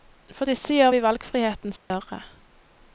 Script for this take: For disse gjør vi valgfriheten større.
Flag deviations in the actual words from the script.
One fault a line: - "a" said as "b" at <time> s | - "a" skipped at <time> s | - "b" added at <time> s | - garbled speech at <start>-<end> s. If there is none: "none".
none